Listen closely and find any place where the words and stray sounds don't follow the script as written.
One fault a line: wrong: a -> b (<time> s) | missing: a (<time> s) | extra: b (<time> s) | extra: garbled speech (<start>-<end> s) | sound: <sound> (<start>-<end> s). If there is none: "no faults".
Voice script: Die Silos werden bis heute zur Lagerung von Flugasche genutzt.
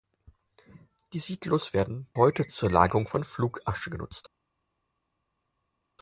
missing: bis (2.1 s)